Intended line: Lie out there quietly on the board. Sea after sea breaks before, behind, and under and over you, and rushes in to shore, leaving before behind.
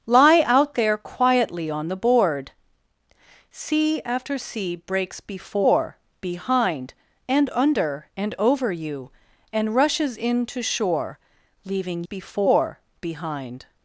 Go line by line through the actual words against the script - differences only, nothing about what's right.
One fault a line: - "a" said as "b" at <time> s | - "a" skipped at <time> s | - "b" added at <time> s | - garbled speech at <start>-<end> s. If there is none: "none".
none